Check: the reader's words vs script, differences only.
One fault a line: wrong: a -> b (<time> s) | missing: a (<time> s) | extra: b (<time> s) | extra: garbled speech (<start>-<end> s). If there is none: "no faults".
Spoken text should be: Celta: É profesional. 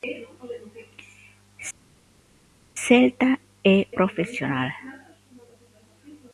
no faults